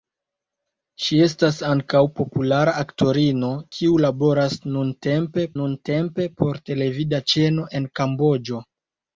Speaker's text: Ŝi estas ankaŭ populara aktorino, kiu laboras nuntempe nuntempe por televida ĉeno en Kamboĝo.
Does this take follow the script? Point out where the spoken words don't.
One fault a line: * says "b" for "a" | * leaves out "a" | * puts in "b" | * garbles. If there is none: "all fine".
all fine